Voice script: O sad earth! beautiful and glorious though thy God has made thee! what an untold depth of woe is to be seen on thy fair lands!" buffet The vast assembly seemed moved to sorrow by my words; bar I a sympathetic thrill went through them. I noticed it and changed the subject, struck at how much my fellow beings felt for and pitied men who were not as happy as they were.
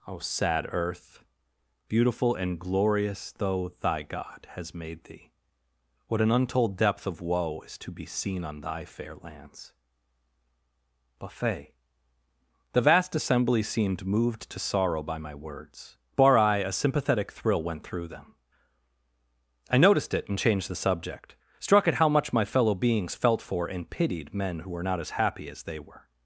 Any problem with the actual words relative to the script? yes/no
no